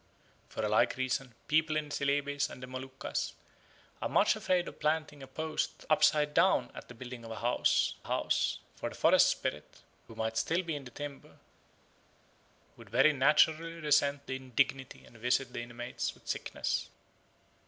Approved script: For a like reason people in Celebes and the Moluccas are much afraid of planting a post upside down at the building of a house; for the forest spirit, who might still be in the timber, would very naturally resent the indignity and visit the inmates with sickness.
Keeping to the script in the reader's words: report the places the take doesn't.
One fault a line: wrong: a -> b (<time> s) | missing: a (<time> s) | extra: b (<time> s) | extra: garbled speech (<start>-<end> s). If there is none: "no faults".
extra: house (8.0 s)